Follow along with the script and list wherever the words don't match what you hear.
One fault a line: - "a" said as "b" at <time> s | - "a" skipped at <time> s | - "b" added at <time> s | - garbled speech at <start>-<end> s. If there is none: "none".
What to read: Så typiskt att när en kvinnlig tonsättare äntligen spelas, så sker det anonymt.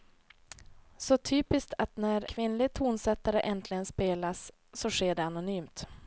- "en" skipped at 2.3 s